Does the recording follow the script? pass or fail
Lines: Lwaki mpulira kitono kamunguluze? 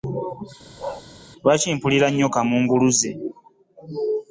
fail